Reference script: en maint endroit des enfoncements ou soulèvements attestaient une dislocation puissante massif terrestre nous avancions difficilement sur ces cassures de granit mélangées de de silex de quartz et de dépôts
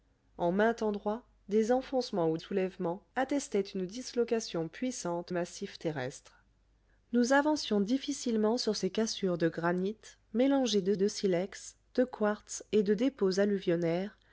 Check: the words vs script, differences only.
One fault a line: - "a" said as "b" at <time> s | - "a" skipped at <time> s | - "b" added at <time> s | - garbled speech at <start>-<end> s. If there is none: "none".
none